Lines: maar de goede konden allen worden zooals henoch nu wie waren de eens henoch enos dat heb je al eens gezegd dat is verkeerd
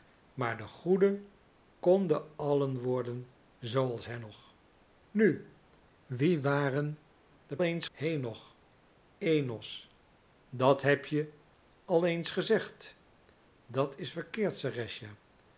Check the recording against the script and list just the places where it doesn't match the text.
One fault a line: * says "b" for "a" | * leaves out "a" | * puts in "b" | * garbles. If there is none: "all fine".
all fine